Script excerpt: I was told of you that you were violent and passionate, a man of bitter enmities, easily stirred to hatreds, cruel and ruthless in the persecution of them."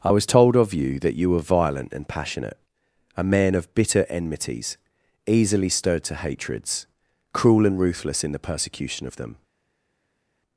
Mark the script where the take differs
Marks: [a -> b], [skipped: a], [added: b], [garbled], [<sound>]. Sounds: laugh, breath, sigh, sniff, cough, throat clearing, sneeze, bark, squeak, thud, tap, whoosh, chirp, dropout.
I was told of you that you were violent and passionate, a man of bitter enmities, easily stirred to hatreds, cruel and ruthless in the persecution of them."